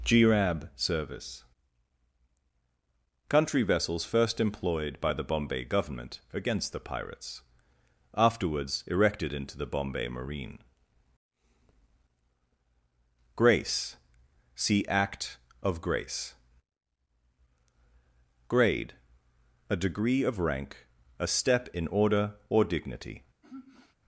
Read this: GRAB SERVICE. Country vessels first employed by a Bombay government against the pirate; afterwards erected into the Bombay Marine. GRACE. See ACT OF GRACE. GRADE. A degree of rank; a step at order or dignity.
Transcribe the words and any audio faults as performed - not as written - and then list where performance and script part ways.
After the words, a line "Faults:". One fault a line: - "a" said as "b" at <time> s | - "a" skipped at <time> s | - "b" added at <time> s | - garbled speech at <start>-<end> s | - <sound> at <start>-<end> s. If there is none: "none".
GRAB SERVICE. Country vessels first employed by the Bombay government against the pirates; afterwards erected into the Bombay Marine. GRACE. See ACT OF GRACE. GRADE. A degree of rank; a step in order or dignity.
Faults:
- "a" said as "the" at 5.1 s
- "pirate" said as "pirates" at 6.8 s
- "at" said as "in" at 21.7 s
- sigh at 23.4-24.0 s